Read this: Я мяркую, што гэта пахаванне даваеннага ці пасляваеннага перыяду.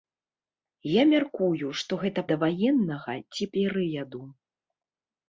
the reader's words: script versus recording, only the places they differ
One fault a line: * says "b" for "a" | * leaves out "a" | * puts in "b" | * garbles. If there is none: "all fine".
* leaves out "пахаванне"
* leaves out "пасляваеннага"